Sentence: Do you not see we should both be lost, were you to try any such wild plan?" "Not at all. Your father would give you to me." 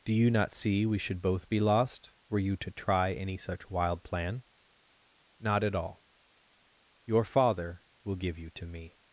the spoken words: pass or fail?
fail